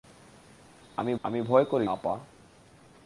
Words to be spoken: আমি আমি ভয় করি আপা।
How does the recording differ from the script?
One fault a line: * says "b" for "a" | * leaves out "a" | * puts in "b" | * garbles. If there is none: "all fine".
all fine